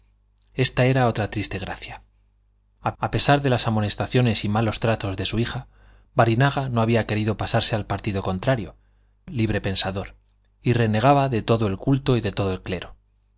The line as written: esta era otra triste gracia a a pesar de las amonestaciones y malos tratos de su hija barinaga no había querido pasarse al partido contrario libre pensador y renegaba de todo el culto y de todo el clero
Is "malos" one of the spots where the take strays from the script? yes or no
no